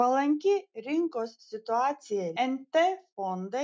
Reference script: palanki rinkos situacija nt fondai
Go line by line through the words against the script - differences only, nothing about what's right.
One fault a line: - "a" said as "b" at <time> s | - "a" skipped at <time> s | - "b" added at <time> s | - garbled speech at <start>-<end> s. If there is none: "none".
none